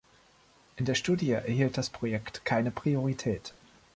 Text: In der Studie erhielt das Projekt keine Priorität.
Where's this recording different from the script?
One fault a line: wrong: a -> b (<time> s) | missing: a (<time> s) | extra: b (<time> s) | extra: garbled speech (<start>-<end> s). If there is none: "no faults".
no faults